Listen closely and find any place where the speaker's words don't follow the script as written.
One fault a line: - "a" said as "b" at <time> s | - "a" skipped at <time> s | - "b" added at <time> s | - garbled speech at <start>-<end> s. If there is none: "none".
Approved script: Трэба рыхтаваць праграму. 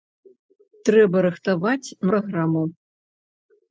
none